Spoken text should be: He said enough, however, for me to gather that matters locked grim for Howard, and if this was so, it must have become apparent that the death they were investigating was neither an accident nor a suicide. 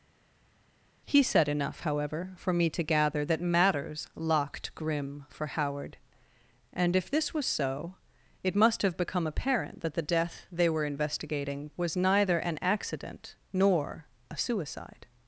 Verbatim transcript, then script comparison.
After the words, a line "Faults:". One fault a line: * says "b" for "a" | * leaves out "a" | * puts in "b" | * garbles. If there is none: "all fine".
He said enough, however, for me to gather that matters locked grim for Howard, and if this was so, it must have become apparent that the death they were investigating was neither an accident nor a suicide.
Faults:
all fine